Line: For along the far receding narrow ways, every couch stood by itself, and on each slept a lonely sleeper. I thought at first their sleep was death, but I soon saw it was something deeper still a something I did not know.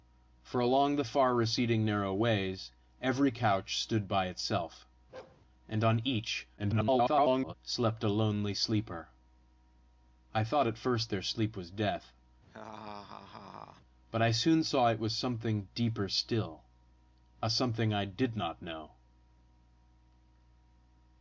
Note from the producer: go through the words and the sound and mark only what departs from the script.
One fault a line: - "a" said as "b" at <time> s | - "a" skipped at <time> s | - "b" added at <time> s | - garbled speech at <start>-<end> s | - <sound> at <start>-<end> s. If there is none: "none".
- bark at 5.1-5.4 s
- garbled speech at 6.6-7.5 s
- laugh at 12.5-13.8 s